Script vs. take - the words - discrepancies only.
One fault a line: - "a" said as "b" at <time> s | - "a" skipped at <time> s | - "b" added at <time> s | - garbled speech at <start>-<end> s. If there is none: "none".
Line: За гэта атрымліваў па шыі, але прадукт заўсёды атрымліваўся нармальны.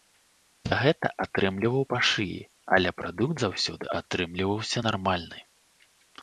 none